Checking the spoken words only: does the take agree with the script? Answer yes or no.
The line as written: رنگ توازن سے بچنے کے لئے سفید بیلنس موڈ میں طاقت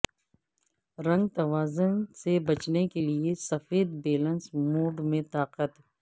yes